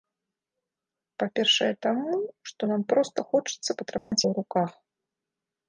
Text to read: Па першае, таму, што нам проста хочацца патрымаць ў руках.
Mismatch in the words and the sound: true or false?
true